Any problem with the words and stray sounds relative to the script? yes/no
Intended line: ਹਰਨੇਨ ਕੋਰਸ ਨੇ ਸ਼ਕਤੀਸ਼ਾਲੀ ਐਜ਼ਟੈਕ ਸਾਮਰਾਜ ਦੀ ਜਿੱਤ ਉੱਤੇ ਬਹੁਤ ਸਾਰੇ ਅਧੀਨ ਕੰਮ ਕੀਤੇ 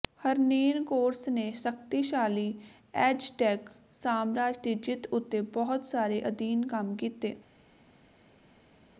no